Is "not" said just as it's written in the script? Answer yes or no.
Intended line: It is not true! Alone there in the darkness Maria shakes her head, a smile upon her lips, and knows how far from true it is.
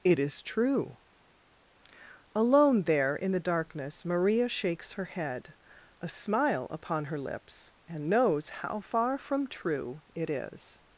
no